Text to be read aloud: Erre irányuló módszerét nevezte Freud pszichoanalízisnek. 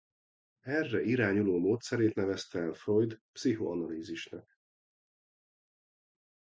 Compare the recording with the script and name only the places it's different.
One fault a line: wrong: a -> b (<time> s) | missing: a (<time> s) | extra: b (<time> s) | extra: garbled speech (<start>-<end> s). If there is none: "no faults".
extra: el (2.6 s)